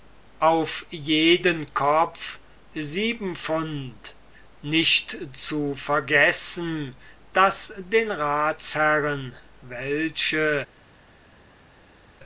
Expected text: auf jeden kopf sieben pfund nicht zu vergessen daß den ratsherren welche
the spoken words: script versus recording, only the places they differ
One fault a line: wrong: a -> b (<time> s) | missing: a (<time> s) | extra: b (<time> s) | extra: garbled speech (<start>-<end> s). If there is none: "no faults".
no faults